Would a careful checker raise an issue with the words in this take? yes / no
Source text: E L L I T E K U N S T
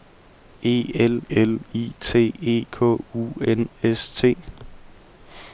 no